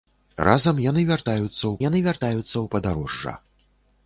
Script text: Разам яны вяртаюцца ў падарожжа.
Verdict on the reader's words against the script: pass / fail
fail